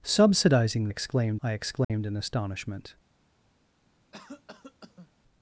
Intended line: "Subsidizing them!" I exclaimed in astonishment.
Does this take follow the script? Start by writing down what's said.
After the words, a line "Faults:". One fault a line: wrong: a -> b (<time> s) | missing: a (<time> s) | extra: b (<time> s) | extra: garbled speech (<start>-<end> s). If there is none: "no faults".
"Subsidizing exclaimed!" I exclaimed in astonishment.
Faults:
wrong: them -> exclaimed (0.9 s)